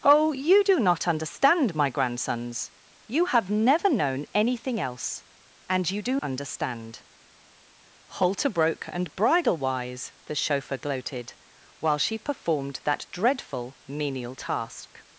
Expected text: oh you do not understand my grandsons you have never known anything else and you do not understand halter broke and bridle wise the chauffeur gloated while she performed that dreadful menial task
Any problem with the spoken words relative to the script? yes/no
yes